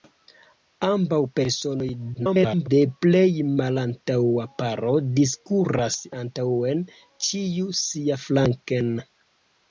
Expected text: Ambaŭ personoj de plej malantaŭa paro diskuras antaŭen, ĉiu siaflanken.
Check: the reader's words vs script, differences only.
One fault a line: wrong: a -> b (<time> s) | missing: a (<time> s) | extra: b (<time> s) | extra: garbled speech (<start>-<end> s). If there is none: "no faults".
extra: garbled speech (2.1-2.7 s)